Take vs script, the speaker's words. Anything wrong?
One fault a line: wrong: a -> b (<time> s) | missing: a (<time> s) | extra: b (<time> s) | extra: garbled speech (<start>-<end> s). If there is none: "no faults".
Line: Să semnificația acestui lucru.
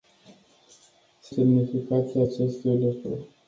no faults